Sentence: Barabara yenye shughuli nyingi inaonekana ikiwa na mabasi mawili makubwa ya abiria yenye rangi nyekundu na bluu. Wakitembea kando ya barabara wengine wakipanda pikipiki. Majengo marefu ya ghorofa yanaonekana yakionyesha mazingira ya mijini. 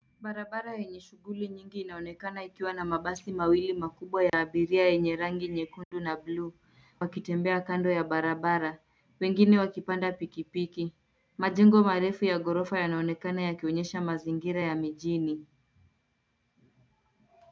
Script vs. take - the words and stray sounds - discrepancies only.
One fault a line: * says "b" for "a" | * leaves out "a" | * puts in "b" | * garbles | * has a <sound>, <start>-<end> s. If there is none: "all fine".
* has a dropout, 4.3-4.3 s
* has a dropout, 5.8-5.9 s